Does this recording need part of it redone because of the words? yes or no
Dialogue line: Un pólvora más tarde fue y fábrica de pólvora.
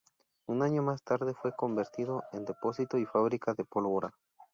yes